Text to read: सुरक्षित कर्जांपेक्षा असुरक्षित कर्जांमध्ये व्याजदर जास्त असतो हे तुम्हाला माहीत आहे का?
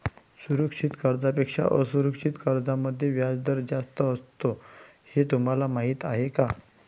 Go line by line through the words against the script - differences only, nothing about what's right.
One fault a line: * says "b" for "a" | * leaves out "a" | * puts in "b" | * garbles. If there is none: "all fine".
all fine